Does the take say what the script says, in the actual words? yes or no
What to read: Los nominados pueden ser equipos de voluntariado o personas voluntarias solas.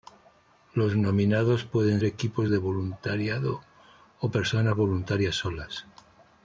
no